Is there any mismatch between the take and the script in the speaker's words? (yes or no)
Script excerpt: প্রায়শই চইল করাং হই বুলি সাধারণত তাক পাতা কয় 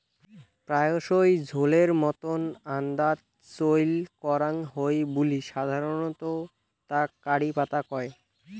yes